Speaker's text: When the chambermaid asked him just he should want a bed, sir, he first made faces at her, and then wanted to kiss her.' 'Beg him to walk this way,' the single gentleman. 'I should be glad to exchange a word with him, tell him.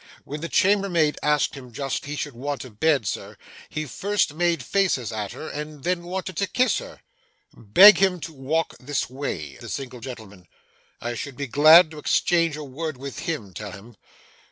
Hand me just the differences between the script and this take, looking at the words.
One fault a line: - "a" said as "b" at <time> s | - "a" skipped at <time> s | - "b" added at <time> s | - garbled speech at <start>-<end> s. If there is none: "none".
none